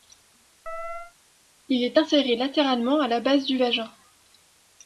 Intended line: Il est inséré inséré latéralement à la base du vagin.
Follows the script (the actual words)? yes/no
no